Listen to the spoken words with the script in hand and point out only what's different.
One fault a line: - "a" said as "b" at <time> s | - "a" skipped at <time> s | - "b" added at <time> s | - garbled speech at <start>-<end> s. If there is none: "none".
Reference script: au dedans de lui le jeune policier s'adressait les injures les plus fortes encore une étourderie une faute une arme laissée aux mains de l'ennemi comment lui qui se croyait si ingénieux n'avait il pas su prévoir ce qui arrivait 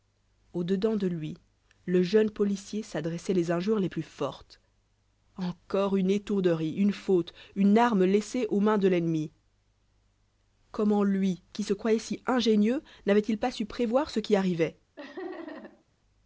none